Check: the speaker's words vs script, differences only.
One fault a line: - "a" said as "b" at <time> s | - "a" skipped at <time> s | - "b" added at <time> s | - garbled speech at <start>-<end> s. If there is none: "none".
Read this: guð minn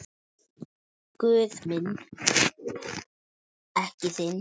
none